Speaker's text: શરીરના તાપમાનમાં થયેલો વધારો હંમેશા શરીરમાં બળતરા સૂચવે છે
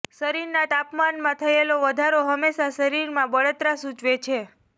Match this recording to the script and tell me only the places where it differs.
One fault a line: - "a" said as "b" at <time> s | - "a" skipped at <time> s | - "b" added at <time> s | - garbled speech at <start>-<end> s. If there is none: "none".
none